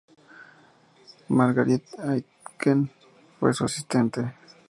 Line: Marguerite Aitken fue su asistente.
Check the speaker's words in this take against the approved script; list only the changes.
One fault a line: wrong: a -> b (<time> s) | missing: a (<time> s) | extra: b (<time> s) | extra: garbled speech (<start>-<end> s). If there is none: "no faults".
no faults